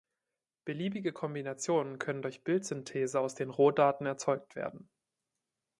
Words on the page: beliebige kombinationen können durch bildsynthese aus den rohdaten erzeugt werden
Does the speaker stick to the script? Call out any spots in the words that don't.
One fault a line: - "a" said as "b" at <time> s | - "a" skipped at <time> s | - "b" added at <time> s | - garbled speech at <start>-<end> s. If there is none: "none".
none